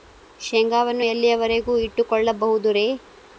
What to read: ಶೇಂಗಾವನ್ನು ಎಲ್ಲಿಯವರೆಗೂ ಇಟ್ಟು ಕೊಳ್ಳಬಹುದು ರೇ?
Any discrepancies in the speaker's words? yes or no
no